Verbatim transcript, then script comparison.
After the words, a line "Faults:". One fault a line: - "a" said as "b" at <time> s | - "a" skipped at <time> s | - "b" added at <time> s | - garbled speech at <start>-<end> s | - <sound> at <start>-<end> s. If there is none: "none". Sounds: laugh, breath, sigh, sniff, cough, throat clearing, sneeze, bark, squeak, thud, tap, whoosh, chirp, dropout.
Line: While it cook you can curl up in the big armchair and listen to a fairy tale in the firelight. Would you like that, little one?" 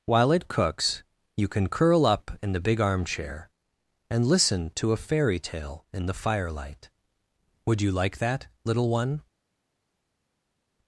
While it cooks you can curl up in the big armchair and listen to a fairy tale in the firelight. Would you like that, little one?"
Faults:
- "cook" said as "cooks" at 0.5 s